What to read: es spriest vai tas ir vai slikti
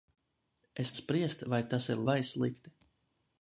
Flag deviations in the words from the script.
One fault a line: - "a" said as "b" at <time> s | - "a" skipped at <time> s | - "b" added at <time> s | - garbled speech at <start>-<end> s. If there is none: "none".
none